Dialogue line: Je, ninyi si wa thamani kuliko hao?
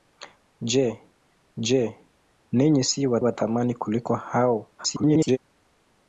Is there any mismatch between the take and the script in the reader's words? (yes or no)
yes